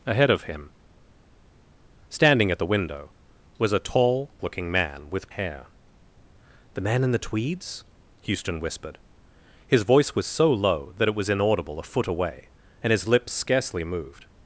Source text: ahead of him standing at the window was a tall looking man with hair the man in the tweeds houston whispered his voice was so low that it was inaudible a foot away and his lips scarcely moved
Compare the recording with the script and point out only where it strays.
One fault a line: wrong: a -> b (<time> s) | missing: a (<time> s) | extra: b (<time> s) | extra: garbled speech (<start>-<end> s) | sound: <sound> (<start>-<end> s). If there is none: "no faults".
no faults